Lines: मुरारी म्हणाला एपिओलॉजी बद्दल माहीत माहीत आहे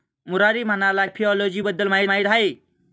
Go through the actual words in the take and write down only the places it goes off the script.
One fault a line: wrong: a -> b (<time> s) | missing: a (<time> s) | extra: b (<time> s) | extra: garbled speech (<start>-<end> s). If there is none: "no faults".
no faults